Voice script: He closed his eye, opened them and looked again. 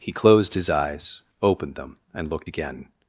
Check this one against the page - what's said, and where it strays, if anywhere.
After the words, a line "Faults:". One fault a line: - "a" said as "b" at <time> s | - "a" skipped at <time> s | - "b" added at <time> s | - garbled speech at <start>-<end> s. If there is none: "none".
He closed his eyes, opened them and looked again.
Faults:
- "eye" said as "eyes" at 0.7 s